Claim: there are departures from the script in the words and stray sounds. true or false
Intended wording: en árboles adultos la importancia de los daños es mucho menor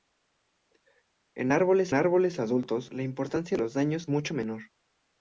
true